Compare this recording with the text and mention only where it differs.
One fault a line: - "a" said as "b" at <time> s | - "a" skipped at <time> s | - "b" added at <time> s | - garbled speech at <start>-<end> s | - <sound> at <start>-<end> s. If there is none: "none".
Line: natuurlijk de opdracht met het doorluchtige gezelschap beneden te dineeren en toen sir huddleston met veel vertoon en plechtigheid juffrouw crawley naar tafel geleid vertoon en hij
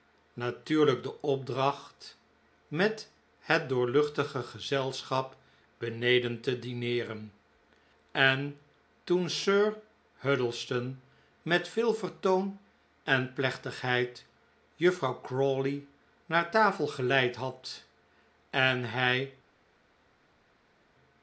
- "vertoon" said as "had" at 17.4 s